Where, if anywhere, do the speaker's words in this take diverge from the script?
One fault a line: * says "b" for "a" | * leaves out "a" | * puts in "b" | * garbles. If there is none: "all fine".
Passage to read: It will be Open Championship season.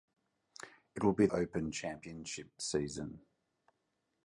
all fine